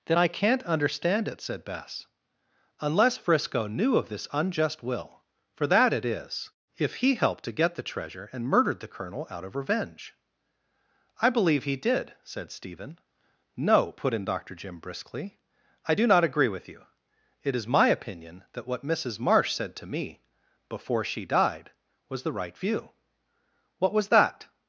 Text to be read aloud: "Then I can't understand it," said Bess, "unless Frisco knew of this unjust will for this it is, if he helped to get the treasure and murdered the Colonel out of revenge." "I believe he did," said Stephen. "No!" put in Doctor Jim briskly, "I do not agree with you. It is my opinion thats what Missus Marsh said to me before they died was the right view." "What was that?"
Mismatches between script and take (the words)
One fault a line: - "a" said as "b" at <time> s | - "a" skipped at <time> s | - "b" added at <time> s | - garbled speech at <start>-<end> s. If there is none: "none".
- "this" said as "that" at 5.7 s
- "thats" said as "that" at 18.5 s
- "they" said as "she" at 21.0 s